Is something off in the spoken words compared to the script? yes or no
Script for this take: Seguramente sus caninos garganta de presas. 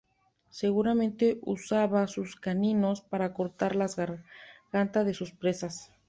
yes